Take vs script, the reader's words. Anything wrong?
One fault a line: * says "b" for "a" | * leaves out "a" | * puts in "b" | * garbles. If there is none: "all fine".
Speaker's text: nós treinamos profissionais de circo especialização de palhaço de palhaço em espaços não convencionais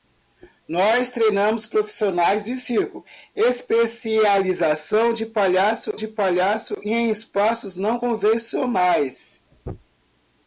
all fine